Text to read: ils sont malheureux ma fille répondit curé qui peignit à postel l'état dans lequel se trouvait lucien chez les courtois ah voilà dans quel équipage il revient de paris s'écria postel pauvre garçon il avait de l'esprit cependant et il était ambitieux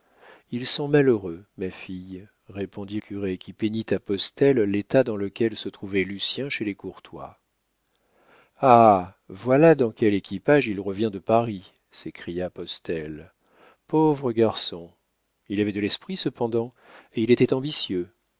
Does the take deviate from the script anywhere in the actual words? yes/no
no